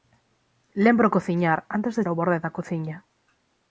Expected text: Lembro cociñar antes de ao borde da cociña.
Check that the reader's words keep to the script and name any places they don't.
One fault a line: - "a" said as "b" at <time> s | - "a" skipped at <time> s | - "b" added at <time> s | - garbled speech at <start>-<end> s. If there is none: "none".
none